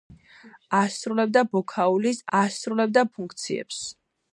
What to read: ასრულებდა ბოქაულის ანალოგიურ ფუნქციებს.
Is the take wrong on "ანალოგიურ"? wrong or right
wrong